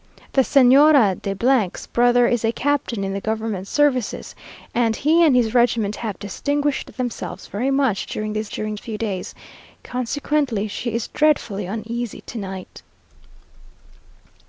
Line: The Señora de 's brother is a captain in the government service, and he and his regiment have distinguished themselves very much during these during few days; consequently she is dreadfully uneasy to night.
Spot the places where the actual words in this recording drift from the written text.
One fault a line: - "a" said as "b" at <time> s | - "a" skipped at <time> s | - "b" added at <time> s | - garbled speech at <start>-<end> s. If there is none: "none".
none